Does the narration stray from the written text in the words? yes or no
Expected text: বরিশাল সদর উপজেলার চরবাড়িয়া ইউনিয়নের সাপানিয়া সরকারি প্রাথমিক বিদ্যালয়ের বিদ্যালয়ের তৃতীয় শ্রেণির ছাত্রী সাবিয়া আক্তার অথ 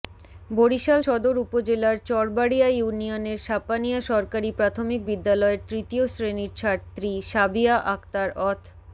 yes